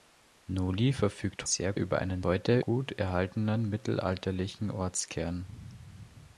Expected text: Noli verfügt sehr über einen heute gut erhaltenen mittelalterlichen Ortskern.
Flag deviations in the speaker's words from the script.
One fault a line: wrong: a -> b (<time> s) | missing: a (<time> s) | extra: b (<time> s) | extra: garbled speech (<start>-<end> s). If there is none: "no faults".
no faults